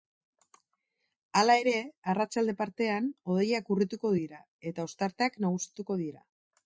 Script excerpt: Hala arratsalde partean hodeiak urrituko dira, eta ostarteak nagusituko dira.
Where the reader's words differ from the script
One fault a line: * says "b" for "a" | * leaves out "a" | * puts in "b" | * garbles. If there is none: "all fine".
* puts in "ere"